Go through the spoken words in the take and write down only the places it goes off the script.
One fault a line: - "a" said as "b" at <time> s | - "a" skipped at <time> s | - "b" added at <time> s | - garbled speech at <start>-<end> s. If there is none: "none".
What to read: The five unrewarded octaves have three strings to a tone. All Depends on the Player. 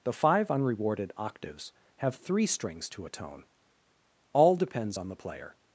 none